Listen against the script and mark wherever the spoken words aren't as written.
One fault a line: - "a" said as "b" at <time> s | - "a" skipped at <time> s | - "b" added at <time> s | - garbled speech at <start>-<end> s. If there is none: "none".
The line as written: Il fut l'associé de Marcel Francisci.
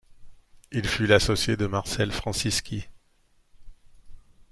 none